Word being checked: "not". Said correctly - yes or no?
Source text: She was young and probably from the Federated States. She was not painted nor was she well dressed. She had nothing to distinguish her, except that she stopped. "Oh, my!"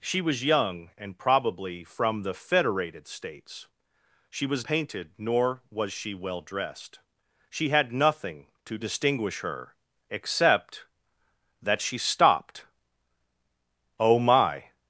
no